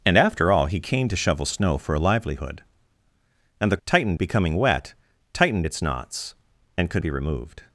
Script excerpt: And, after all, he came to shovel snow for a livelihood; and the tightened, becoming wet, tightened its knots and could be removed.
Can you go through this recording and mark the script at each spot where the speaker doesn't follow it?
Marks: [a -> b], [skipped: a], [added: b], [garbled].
And, after all, he came to shovel snow for a livelihood; and the tightened, becoming wet, tightened its knots and could be removed.